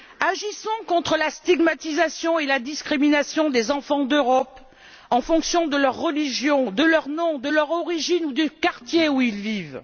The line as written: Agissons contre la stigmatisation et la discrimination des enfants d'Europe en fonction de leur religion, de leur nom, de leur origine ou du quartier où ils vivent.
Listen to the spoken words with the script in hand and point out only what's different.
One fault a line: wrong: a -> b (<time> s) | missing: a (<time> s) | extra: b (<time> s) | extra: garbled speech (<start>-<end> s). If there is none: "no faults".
no faults